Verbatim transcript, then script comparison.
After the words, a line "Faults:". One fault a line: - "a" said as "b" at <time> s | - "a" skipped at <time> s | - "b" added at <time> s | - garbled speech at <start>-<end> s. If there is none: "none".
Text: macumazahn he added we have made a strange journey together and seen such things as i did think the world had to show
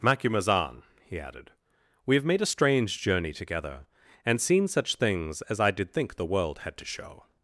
macumazahn he added we have made a strange journey together and seen such things as i did think the world had to show
Faults:
none